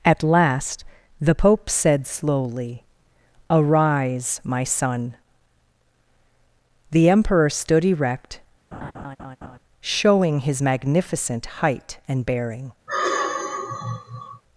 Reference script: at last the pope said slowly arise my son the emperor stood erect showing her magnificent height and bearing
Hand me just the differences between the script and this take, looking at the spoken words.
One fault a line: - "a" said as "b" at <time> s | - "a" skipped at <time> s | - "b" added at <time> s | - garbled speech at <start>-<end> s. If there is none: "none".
- "her" said as "his" at 10.4 s